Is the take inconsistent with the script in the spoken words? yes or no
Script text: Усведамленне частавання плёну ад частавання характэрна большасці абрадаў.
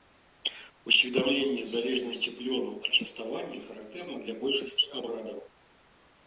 yes